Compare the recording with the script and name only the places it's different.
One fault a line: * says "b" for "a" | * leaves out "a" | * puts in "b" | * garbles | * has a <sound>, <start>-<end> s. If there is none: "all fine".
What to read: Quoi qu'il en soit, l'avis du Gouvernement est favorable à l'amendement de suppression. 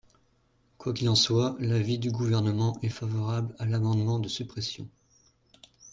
all fine